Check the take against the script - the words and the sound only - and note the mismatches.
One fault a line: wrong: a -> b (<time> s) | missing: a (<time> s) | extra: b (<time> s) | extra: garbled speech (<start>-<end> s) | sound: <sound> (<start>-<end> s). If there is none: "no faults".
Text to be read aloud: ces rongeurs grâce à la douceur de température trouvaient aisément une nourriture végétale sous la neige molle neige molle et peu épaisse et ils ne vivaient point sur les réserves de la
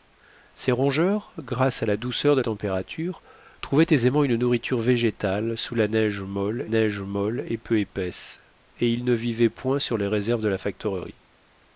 no faults